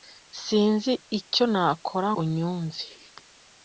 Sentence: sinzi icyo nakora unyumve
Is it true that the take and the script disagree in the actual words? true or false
false